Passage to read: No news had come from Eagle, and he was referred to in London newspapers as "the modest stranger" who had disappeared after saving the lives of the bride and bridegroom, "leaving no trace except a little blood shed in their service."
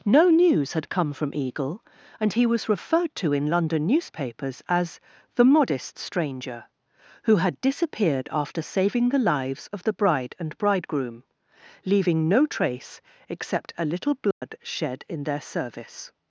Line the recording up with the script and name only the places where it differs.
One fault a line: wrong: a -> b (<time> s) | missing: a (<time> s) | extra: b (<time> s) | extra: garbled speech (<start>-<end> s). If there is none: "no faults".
no faults